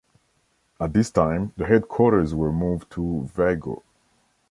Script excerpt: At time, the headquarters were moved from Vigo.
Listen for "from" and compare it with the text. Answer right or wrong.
wrong